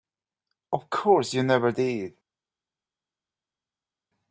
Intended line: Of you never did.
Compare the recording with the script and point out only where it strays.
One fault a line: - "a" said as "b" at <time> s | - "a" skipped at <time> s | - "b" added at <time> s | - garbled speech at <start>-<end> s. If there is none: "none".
- "course" added at 0.9 s